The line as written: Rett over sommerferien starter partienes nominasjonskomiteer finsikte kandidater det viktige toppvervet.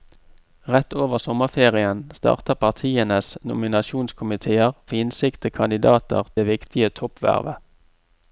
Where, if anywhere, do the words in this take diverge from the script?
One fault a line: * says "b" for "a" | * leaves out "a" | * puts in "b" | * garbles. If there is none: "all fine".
all fine